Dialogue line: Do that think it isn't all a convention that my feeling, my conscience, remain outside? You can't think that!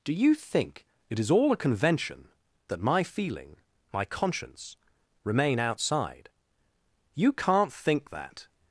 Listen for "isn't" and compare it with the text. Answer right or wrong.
wrong